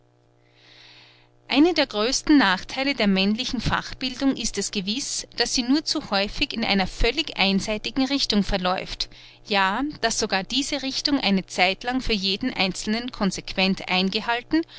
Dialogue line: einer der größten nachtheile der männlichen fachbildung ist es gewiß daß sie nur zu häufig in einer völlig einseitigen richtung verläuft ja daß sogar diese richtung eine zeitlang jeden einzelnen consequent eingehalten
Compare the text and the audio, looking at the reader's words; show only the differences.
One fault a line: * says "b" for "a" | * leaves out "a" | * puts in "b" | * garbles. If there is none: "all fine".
* puts in "für"